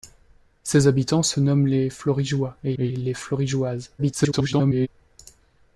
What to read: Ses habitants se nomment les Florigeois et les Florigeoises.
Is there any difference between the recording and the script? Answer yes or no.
yes